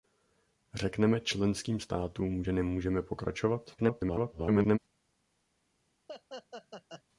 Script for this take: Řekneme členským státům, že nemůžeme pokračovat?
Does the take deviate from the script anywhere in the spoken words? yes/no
yes